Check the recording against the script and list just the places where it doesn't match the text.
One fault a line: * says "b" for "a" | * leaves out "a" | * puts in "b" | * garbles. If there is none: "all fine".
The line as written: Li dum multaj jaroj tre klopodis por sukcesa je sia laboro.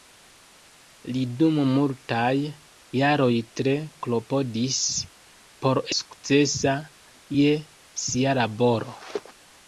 all fine